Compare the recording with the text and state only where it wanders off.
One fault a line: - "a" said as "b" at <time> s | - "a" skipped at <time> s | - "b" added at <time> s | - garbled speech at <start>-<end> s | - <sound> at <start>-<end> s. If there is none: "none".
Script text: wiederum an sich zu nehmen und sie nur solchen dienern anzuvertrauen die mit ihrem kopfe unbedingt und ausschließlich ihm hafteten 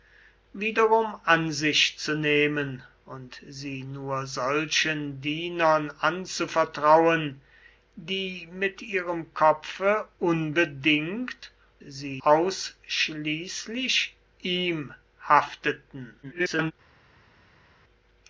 - "und" said as "sie" at 11.9 s
- garbled speech at 16.2-16.7 s